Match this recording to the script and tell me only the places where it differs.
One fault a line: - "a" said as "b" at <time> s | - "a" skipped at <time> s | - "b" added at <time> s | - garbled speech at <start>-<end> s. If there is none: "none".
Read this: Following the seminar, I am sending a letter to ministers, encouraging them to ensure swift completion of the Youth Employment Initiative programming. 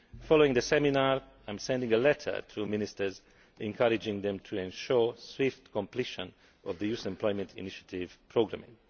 none